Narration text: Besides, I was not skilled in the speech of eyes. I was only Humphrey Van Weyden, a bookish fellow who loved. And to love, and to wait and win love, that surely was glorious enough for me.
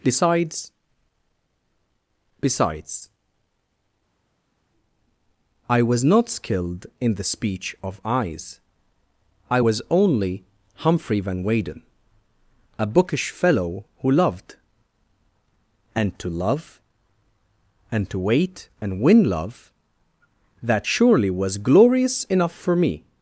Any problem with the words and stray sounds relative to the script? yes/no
yes